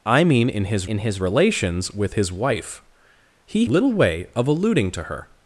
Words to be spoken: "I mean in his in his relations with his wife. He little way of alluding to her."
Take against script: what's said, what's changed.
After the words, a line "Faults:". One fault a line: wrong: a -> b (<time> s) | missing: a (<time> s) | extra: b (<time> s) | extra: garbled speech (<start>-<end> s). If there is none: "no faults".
"I mean in his in his relations with his wife. He little way of alluding to her."
Faults:
no faults